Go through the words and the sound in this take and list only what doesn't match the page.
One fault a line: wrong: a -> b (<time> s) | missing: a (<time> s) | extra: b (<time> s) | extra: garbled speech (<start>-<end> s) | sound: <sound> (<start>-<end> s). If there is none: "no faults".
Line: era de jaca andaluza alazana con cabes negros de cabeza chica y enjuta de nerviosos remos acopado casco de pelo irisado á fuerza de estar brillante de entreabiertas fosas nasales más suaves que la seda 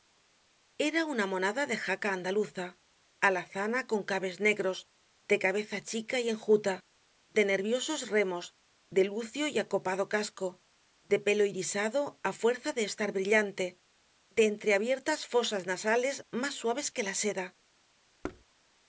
extra: una monada (1.1 s)
extra: de lucio y (8.9 s)
sound: thud (18.2-18.4 s)